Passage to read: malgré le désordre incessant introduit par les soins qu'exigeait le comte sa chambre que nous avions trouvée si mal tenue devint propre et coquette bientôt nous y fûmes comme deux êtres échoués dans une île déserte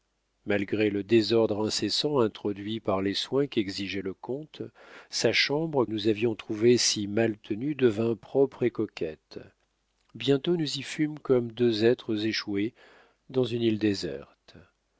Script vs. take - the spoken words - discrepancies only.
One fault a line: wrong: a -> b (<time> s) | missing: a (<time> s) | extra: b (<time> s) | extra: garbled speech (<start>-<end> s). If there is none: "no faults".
missing: que (5.8 s)